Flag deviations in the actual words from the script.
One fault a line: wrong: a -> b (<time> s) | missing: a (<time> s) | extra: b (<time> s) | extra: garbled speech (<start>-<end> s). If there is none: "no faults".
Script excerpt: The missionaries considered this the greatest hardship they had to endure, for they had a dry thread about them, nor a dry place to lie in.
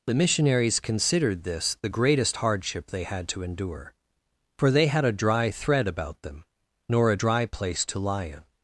no faults